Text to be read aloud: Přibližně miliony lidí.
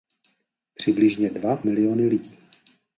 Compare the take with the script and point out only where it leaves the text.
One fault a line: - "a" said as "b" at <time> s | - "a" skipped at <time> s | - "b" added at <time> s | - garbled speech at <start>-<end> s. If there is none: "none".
- "dva" added at 1.3 s